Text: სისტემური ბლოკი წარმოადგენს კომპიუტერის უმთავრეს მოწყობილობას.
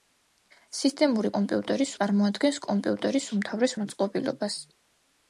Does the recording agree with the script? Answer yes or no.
no